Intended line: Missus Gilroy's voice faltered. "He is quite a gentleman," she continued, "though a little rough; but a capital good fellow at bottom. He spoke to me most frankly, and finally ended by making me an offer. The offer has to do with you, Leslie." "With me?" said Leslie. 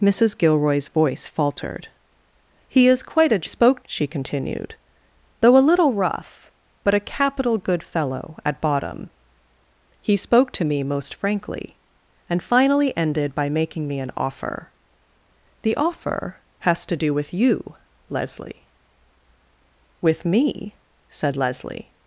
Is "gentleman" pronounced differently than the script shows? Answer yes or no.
yes